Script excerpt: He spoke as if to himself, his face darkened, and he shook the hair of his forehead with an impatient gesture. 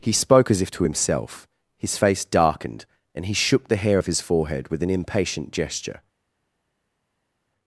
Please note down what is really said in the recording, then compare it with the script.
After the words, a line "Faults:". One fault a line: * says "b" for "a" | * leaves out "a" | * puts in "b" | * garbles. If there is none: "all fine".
He spoke as if to himself, his face darkened, and he shook the hair of his forehead with an impatient gesture.
Faults:
all fine